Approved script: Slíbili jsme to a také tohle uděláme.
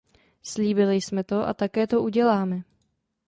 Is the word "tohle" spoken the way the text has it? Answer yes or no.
no